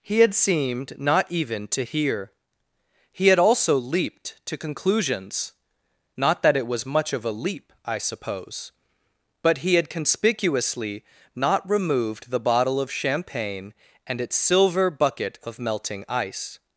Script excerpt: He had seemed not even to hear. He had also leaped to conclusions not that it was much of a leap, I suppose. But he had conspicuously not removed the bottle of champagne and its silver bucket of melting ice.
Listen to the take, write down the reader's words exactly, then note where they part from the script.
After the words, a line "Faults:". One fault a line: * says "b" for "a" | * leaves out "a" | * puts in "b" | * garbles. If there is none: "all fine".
He had seemed not even to hear. He had also leaped to conclusions not that it was much of a leap, I suppose. But he had conspicuously not removed the bottle of champagne and its silver bucket of melting ice.
Faults:
all fine